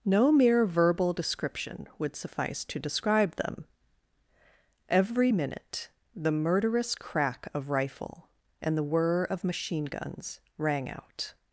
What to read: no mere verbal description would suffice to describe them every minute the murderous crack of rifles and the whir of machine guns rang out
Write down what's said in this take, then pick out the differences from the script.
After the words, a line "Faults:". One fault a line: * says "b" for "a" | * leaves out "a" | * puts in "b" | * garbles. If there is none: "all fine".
no mere verbal description would suffice to describe them every minute the murderous crack of rifle and the whir of machine guns rang out
Faults:
* says "rifle" for "rifles"